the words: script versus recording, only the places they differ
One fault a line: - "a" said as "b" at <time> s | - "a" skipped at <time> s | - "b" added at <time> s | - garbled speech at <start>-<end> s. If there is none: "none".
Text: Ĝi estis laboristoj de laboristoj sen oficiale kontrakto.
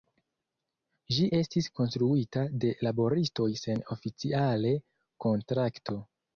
- "laboristoj" said as "konstruita" at 1.8 s